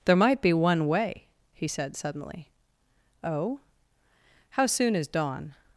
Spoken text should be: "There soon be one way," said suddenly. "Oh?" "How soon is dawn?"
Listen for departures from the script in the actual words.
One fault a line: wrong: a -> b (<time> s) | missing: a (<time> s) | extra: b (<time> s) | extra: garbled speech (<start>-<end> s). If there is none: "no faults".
wrong: soon -> might (0.1 s)
extra: he (1.5 s)